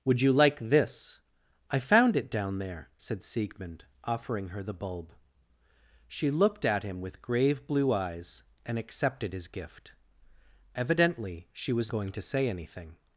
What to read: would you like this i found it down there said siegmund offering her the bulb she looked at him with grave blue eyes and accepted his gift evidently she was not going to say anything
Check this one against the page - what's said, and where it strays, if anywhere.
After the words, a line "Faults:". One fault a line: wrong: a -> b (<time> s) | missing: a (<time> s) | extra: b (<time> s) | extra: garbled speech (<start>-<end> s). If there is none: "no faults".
would you like this i found it down there said siegmund offering her the bulb she looked at him with grave blue eyes and accepted his gift evidently she was going to say anything
Faults:
missing: not (11.9 s)